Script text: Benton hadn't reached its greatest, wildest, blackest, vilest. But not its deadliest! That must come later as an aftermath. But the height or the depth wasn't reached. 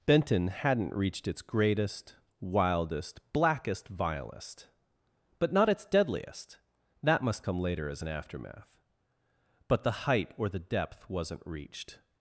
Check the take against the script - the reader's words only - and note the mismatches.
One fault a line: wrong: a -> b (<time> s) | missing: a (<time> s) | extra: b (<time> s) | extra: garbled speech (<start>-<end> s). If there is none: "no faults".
no faults